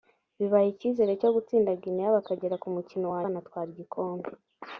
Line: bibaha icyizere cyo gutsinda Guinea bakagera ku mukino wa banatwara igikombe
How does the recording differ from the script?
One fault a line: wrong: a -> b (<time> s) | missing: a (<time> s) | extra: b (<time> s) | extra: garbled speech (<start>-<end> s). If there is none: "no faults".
no faults